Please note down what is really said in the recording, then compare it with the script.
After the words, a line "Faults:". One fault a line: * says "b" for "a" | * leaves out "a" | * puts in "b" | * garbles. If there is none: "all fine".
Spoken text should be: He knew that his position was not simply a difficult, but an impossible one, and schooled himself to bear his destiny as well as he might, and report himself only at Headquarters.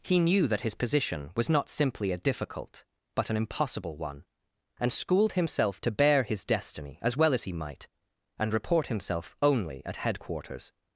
He knew that his position was not simply a difficult, but an impossible one, and schooled himself to bear his destiny as well as he might, and report himself only at Headquarters.
Faults:
all fine